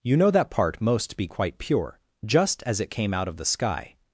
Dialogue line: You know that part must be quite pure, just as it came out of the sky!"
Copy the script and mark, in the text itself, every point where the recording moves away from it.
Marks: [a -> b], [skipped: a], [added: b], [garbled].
You know that part [must -> most] be quite pure, just as it came out of the sky!"